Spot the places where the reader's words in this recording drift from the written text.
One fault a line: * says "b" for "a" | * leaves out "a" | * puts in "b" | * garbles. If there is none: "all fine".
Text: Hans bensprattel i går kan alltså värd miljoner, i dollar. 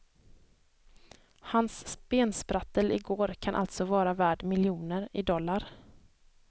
* puts in "vara"